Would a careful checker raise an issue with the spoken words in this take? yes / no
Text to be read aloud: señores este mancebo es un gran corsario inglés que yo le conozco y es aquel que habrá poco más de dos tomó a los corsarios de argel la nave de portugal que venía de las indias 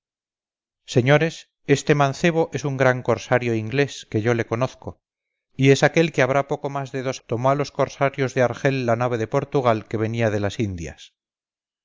no